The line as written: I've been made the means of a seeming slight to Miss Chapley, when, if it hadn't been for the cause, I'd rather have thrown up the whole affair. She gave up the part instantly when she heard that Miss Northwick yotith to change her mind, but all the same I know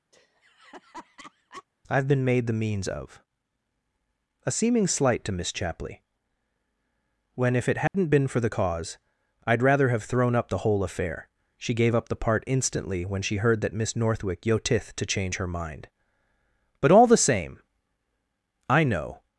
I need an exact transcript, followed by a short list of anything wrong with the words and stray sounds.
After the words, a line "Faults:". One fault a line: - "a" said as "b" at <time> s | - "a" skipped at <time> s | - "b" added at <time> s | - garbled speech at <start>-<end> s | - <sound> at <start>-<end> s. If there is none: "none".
I've been made the means of a seeming slight to Miss Chapley, when, if it hadn't been for the cause, I'd rather have thrown up the whole affair. She gave up the part instantly when she heard that Miss Northwick yotith to change her mind, but all the same I know
Faults:
- laugh at 0.1-1.6 s
- dropout at 7.9-7.9 s